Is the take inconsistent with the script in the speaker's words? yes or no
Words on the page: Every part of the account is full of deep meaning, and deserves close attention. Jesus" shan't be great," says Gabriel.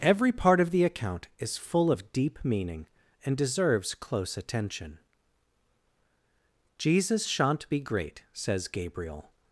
no